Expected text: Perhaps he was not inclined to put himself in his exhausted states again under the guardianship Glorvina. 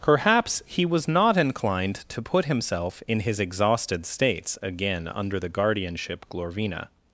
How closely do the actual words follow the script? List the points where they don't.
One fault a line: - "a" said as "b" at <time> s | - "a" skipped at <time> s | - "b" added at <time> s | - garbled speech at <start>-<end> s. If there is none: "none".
none